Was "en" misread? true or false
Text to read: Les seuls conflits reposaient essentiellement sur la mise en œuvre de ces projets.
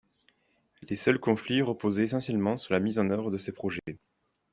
false